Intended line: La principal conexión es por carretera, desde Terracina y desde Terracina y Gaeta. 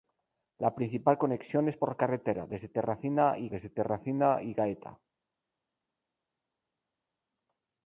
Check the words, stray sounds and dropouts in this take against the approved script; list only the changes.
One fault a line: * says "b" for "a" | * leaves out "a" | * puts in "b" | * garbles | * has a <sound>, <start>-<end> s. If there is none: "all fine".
all fine